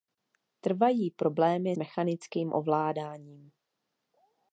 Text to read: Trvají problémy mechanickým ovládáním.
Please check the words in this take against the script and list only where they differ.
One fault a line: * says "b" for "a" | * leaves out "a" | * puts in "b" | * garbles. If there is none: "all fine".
all fine